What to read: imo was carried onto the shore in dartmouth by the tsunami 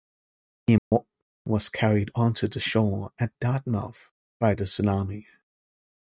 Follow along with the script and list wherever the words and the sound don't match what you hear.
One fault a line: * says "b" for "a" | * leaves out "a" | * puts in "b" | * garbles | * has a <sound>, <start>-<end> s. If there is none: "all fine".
* has a dropout, 0.8-0.9 s
* says "at" for "in"